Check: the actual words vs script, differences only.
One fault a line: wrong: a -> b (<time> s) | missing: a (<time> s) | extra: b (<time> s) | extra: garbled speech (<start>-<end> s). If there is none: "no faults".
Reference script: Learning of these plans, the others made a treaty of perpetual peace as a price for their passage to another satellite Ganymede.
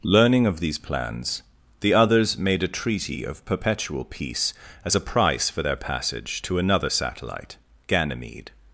no faults